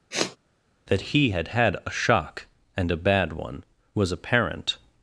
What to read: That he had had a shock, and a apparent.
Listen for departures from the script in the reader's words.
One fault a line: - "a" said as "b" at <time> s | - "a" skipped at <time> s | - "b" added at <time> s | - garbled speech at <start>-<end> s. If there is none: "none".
- "bad one was" added at 3.0 s